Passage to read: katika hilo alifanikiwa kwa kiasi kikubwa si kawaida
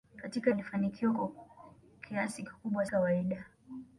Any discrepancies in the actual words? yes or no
yes